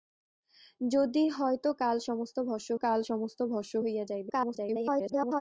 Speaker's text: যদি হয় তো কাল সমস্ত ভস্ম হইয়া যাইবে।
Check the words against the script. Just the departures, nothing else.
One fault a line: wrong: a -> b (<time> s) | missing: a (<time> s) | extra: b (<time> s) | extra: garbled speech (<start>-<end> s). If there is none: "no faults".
extra: কাল সমস্ত ভস্ম (2.8 s)
extra: garbled speech (4.3-5.4 s)